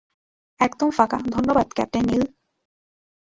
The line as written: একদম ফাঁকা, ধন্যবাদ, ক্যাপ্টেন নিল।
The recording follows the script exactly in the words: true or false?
true